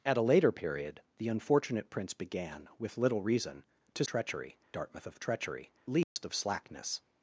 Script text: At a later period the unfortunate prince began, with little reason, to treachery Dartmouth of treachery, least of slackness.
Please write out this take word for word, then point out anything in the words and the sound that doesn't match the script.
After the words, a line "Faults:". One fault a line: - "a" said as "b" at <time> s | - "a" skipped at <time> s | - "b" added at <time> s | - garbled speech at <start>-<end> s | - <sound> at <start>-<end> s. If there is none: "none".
At a later period the unfortunate prince began, with little reason, to treachery Dartmouth of treachery, least of slackness.
Faults:
- dropout at 6.0-6.2 s